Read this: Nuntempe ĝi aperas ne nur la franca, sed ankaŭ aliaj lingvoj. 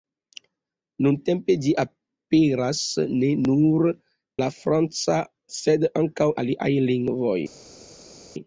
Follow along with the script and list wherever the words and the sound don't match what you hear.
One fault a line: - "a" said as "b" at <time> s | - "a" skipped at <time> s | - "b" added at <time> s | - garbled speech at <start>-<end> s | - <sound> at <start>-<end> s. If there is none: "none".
none